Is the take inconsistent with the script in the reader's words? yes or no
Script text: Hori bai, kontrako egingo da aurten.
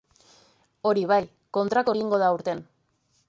no